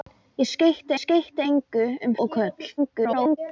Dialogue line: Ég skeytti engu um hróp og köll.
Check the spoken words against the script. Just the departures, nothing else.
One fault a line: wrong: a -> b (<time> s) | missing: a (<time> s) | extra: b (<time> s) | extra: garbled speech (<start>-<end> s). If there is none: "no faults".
extra: skeytti (1.0 s)
missing: hróp (2.2 s)
extra: garbled speech (2.8-3.4 s)